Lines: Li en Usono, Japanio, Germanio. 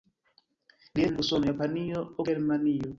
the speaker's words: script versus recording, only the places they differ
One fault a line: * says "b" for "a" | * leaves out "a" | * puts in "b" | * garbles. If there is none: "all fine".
all fine